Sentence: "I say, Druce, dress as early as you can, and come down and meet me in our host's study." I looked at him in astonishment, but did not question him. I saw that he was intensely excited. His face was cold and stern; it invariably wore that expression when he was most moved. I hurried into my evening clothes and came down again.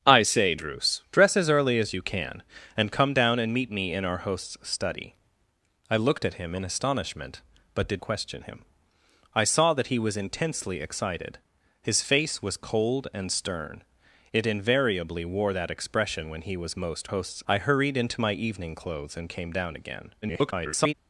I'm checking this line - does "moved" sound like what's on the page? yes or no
no